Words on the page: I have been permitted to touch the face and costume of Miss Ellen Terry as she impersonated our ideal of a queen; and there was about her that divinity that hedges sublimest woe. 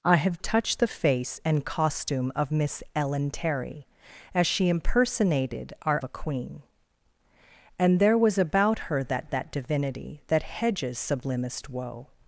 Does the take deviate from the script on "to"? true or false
true